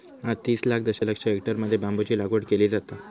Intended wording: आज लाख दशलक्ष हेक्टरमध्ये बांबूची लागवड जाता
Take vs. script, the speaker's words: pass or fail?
fail